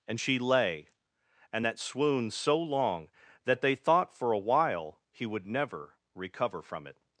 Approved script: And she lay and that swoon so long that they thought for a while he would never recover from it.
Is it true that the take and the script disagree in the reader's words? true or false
false